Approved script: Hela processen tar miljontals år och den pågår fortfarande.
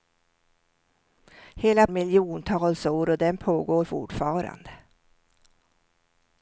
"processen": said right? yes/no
no